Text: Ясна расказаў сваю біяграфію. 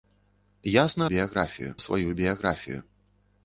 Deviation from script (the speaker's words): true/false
true